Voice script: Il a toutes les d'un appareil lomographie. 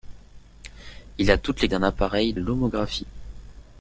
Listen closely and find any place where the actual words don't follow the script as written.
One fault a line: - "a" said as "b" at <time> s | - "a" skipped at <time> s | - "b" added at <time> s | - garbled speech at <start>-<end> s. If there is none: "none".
none